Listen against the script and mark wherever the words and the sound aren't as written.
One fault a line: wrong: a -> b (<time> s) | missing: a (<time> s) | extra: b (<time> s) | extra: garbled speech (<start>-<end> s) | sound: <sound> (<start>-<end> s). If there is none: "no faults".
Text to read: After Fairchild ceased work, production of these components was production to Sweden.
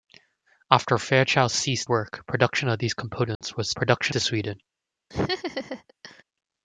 sound: dropout (3.4-3.4 s)
sound: laugh (5.1-6.2 s)